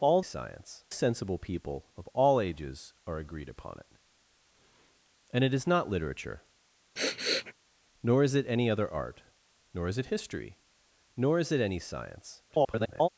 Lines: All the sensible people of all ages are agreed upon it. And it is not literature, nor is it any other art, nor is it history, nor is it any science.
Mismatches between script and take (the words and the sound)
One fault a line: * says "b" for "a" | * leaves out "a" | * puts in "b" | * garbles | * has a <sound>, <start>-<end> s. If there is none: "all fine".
* says "science" for "the"
* has a sniff, 7.0-7.5 s
* garbles